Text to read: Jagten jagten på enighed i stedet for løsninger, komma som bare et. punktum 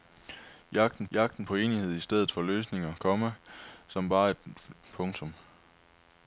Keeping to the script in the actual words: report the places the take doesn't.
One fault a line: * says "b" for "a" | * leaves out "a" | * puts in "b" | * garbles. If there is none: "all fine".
all fine